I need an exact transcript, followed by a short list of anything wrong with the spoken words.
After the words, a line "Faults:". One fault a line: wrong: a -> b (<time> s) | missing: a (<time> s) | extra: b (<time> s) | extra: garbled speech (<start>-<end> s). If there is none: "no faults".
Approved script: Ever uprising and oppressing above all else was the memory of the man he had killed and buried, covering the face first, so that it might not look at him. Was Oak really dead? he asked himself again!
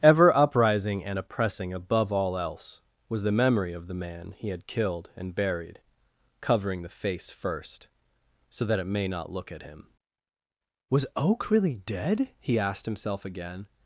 Ever uprising and oppressing above all else was the memory of the man he had killed and buried, covering the face first, so that it may not look at him. Was Oak really dead? he asked himself again!
Faults:
wrong: might -> may (8.9 s)